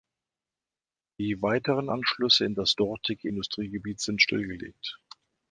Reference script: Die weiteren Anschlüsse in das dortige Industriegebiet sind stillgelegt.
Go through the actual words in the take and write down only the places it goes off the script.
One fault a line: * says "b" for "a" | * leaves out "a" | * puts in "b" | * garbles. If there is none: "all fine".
all fine